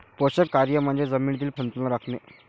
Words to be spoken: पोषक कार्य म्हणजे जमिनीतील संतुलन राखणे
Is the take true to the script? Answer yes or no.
yes